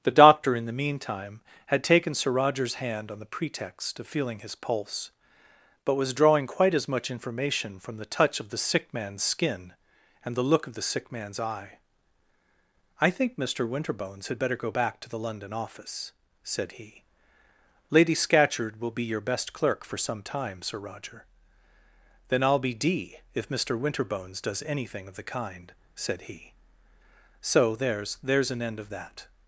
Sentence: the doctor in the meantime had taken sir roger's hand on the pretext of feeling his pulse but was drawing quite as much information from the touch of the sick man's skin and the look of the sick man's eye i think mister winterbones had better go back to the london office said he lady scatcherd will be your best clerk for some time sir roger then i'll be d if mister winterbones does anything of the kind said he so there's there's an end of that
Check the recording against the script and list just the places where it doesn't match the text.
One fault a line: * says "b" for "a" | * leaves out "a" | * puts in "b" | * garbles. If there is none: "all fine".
all fine